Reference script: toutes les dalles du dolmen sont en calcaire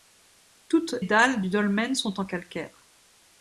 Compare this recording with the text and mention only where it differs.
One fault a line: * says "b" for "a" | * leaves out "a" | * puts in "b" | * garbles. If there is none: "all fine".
* leaves out "les"